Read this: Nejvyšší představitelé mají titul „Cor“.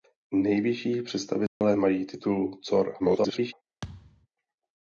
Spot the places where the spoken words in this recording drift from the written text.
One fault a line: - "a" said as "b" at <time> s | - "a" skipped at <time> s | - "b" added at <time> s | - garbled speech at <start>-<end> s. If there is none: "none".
- garbled speech at 3.0-3.5 s